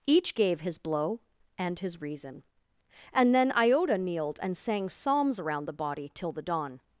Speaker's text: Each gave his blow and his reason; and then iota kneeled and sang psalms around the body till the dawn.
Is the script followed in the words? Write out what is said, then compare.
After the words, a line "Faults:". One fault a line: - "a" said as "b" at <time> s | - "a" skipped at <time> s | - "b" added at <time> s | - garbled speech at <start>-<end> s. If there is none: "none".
Each gave his blow and his reason; and then iota kneeled and sang psalms around the body till the dawn.
Faults:
none